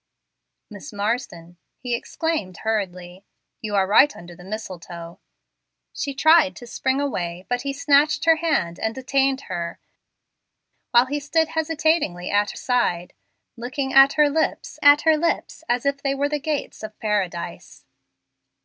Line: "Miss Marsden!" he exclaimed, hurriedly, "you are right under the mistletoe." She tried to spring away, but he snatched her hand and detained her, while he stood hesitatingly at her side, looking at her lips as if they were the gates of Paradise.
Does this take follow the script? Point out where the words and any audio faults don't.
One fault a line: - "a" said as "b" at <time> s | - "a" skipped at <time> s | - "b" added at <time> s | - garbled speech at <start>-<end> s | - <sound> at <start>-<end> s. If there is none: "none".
- "her" skipped at 12.5 s
- "at her lips" added at 14.8 s